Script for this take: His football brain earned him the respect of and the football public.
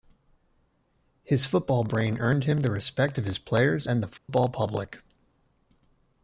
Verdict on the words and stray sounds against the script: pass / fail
fail